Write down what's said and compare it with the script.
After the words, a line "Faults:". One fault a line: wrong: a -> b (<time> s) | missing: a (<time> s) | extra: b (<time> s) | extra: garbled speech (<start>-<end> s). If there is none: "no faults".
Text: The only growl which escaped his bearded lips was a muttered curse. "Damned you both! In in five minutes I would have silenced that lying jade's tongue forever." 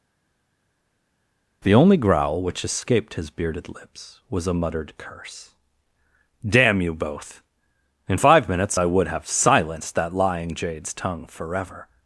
The only growl which escaped his bearded lips was a muttered curse. "Damn you both! In five minutes I would have silenced that lying jade's tongue forever."
Faults:
wrong: Damned -> Damn (6.4 s)
missing: in (8.2 s)